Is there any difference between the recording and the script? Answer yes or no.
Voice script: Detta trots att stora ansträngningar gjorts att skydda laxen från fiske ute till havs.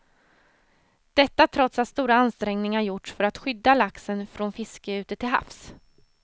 yes